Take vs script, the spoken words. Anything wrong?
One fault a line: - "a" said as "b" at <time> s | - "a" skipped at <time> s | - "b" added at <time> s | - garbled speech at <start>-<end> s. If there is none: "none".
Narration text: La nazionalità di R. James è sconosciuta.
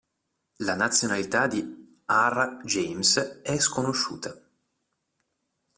none